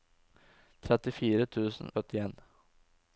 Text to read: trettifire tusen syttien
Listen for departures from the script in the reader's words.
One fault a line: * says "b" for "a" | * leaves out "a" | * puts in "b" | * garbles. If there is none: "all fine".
all fine